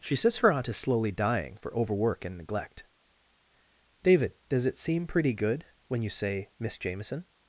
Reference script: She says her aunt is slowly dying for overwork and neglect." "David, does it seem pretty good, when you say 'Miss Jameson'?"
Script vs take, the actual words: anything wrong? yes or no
no